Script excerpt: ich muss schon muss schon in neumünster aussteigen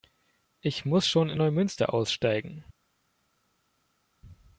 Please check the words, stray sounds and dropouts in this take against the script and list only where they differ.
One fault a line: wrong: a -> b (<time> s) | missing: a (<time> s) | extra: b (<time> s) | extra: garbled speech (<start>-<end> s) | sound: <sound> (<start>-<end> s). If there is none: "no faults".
missing: muss schon (1.3 s)